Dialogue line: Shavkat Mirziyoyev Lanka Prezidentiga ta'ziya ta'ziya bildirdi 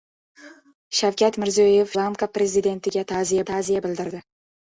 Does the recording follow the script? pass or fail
pass